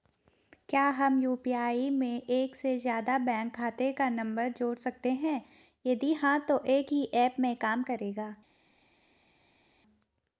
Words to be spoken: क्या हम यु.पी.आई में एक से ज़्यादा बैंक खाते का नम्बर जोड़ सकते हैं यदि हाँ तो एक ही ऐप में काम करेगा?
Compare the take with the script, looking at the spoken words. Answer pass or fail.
pass